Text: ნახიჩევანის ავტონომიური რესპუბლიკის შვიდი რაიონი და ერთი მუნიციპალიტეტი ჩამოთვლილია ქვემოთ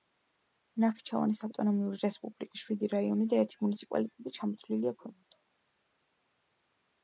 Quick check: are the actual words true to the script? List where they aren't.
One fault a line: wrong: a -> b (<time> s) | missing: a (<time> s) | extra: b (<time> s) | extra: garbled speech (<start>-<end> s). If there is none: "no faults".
no faults